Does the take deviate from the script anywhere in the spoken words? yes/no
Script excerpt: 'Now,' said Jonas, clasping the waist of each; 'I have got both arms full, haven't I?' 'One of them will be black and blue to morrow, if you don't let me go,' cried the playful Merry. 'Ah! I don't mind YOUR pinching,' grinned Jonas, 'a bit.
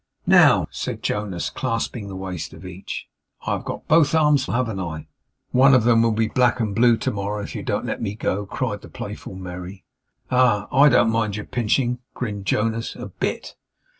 yes